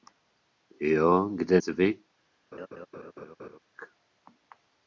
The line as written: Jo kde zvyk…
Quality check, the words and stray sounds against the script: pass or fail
fail